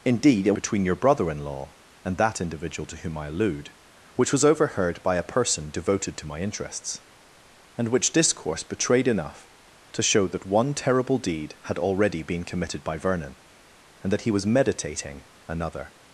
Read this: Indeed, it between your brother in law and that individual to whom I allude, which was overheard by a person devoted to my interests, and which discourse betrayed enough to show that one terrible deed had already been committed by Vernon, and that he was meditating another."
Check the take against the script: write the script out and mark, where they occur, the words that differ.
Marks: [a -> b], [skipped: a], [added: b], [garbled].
Indeed, it between your brother in law and that individual to whom I allude, which was overheard by a person devoted to my interests, and which discourse betrayed enough to show that one terrible deed had already been committed by Vernon, and that he was meditating another."